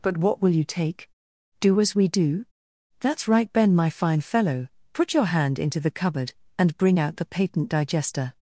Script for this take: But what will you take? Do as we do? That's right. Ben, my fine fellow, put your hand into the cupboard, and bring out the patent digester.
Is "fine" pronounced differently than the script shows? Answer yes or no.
no